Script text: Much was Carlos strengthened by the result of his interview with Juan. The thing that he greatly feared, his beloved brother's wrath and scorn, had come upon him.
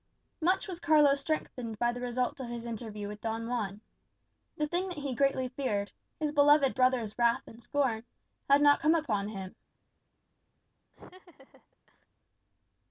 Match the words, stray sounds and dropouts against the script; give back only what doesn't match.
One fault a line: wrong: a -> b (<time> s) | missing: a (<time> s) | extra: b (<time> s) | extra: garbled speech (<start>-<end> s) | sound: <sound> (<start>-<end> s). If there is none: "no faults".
extra: Don (3.2 s)
extra: not (8.6 s)
sound: laugh (10.9-12.1 s)